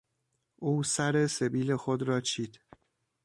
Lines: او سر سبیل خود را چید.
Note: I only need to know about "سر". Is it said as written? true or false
true